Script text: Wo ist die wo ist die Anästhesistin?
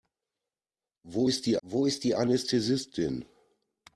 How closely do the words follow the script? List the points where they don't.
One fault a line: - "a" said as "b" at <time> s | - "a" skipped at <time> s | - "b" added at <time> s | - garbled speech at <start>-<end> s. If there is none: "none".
none